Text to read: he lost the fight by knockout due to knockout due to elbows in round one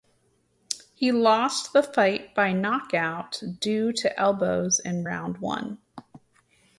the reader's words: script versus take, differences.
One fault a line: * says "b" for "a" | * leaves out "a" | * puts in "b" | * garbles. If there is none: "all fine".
* leaves out "knockout due to"